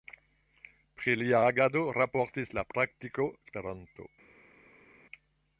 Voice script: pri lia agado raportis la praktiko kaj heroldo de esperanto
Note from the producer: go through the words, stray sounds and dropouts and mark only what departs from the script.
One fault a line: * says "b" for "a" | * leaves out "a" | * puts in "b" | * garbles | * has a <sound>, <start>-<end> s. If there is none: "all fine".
* leaves out "kaj heroldo de"